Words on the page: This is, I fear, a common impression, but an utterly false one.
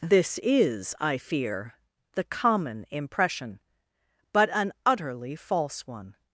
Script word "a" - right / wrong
wrong